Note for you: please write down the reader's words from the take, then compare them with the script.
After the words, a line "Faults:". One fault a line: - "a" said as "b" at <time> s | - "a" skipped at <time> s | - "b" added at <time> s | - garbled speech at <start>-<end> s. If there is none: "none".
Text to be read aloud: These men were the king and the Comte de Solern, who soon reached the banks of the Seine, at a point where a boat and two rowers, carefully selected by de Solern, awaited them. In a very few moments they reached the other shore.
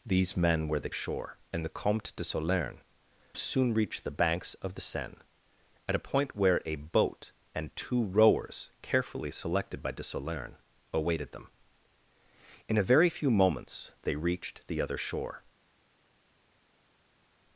These men were the shore and the Comte de Solern, soon reached the banks of the Seine, at a point where a boat and two rowers, carefully selected by de Solern, awaited them. In a very few moments they reached the other shore.
Faults:
- "king" said as "shore" at 0.9 s
- "who" skipped at 2.8 s